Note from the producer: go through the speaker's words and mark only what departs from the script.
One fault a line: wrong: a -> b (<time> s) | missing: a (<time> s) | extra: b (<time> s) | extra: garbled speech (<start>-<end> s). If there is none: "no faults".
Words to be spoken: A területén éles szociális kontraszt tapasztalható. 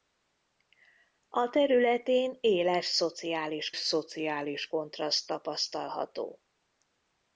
extra: szociális (3.8 s)